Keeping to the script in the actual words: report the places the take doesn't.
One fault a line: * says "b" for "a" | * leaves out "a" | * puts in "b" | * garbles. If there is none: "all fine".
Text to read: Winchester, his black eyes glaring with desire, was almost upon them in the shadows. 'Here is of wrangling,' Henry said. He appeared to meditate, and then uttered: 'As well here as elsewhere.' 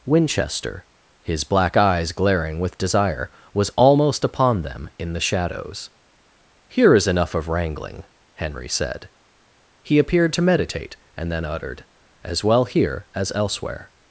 * puts in "enough"